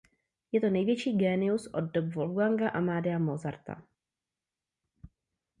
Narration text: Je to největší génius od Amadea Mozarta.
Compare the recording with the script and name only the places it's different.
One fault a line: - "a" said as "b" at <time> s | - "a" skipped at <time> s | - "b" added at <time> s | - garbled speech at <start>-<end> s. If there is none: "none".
- "dob Wolfganga" added at 1.8 s